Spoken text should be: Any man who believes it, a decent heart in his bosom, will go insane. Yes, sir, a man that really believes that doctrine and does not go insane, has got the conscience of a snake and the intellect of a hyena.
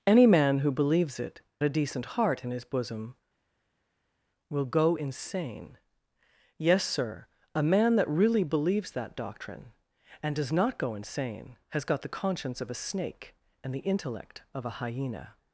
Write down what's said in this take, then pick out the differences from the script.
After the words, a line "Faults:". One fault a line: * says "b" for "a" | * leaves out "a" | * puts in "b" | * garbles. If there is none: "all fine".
Any man who believes it, a decent heart in his bosom, will go insane. Yes, sir, a man that really believes that doctrine and does not go insane, has got the conscience of a snake and the intellect of a hyena.
Faults:
all fine